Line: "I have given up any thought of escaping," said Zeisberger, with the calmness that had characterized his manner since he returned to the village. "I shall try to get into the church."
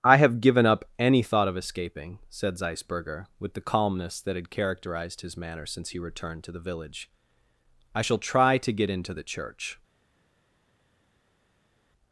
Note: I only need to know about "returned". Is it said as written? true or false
true